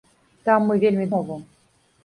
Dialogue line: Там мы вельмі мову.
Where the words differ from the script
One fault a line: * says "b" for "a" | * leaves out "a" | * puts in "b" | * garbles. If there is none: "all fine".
all fine